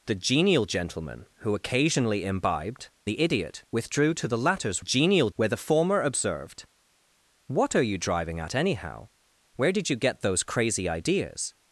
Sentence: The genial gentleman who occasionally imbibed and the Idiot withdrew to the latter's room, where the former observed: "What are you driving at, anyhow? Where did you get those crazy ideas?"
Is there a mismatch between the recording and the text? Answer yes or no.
yes